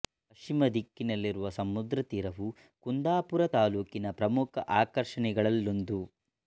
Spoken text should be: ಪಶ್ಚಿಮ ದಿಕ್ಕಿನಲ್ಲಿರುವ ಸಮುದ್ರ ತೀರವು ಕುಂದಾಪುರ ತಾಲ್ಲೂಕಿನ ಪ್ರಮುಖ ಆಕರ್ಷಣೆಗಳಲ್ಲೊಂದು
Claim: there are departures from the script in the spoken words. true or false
false